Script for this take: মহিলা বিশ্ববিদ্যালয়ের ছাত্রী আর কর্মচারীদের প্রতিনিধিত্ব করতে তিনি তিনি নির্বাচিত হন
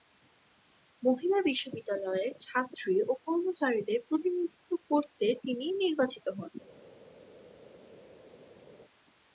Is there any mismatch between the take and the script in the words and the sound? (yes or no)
yes